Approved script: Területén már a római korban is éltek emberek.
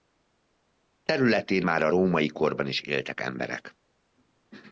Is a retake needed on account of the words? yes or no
no